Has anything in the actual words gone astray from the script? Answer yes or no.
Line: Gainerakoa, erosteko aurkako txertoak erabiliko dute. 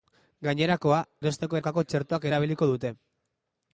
no